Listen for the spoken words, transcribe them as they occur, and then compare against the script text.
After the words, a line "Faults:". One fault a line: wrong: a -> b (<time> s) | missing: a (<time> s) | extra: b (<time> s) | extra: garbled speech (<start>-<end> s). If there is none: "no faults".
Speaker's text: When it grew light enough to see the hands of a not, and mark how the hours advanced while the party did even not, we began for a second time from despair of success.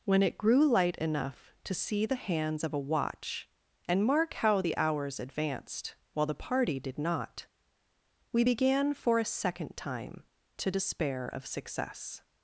When it grew light enough to see the hands of a watch, and mark how the hours advanced while the party did not, we began for a second time to despair of success.
Faults:
wrong: not -> watch (2.8 s)
missing: even (7.0 s)
wrong: from -> to (10.6 s)